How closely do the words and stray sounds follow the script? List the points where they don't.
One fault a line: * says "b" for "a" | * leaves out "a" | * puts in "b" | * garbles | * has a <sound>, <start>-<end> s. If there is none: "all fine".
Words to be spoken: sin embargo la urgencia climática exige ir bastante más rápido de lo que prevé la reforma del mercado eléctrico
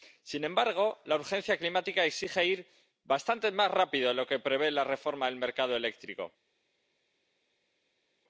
all fine